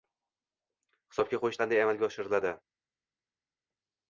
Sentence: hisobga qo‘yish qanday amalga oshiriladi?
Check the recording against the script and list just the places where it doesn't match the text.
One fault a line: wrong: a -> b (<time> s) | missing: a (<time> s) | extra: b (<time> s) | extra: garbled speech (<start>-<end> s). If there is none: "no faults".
no faults